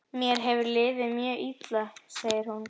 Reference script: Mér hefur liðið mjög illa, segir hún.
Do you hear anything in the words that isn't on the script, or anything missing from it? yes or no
no